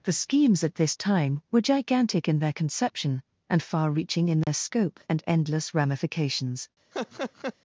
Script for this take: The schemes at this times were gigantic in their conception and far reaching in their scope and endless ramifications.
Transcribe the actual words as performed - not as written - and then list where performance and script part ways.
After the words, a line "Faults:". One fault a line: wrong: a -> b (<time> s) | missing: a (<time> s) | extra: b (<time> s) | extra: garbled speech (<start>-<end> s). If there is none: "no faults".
The schemes at this time were gigantic in their conception and far reaching in their scope and endless ramifications.
Faults:
wrong: times -> time (1.0 s)